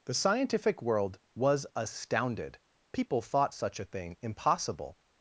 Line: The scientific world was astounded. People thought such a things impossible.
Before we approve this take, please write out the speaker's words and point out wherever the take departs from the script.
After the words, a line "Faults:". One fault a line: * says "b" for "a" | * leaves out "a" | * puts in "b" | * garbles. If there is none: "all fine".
The scientific world was astounded. People thought such a thing impossible.
Faults:
* says "thing" for "things"